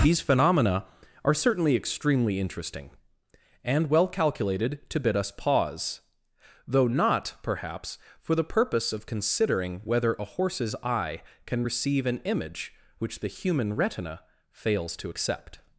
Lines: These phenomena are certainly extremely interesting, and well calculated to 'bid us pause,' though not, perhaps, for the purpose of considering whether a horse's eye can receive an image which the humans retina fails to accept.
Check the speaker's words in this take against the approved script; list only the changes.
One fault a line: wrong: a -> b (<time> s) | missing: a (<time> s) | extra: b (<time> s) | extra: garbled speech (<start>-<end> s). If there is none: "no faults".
wrong: humans -> human (13.3 s)